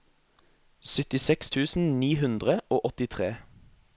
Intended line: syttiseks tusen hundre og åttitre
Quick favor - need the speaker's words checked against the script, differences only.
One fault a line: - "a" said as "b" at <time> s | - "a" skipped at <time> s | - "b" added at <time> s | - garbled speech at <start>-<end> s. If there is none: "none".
- "ni" added at 2.0 s